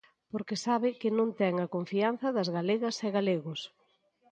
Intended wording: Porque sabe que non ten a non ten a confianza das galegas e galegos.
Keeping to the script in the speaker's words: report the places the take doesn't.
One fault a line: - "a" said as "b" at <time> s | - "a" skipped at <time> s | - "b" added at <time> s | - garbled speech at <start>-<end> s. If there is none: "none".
- "non ten a" skipped at 1.7 s